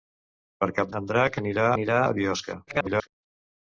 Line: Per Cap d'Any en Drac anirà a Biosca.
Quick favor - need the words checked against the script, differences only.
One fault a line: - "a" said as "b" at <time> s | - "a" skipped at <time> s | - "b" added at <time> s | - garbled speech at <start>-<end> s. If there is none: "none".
- "d'Any" skipped at 0.9 s
- "anirà" added at 1.8 s
- garbled speech at 2.7-3.1 s